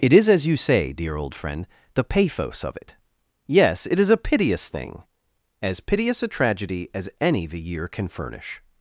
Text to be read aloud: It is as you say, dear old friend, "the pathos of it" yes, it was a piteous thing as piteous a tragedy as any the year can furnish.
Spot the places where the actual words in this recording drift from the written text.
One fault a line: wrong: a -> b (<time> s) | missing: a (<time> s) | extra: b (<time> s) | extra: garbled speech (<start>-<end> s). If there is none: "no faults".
wrong: was -> is (4.0 s)